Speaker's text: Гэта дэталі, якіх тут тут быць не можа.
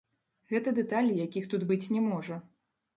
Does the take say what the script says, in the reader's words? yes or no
no